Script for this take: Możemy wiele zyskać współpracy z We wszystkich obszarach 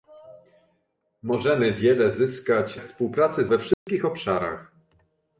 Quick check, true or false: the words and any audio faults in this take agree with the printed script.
false